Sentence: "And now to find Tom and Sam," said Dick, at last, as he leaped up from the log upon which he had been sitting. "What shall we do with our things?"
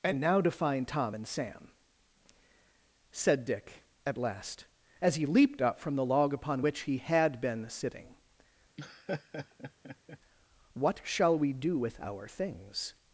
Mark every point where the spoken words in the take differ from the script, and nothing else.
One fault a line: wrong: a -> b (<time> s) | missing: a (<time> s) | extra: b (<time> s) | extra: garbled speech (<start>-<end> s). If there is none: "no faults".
no faults